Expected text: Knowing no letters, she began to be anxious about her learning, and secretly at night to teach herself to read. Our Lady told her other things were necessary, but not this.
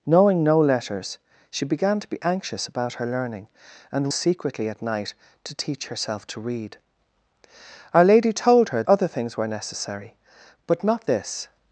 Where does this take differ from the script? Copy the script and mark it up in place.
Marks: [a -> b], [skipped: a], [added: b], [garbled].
Knowing no letters, she began to be anxious about her learning, and secretly at night to teach herself to read. Our Lady told her other things were necessary, but not this.